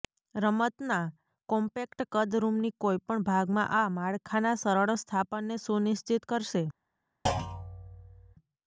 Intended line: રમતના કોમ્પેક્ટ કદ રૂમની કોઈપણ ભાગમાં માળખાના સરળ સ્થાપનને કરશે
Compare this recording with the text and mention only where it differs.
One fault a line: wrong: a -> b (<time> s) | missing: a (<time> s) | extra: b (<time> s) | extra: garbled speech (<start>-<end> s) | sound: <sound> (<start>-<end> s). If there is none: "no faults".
extra: આ (3.8 s)
extra: સુનિશ્ચિત (5.6 s)
sound: thud (7.3-8.4 s)